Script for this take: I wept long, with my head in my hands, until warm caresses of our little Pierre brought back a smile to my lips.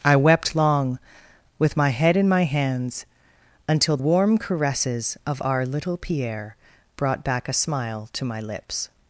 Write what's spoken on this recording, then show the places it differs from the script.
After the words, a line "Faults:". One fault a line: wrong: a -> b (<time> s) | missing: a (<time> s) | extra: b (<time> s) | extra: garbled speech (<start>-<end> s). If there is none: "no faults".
I wept long, with my head in my hands, until warm caresses of our little Pierre brought back a smile to my lips.
Faults:
no faults